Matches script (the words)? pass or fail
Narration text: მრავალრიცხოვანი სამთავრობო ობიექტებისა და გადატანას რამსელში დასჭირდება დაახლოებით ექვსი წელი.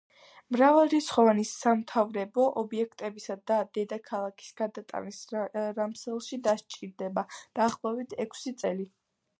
fail